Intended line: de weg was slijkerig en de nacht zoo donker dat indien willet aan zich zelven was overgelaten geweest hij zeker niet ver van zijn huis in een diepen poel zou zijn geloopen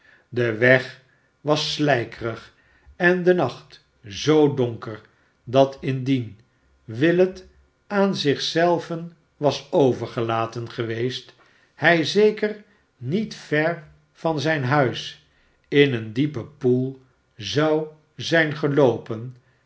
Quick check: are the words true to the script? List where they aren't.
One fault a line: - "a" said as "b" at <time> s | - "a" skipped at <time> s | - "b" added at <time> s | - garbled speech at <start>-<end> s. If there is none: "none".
none